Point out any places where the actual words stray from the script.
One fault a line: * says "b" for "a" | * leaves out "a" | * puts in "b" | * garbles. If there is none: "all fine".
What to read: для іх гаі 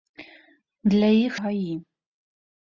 all fine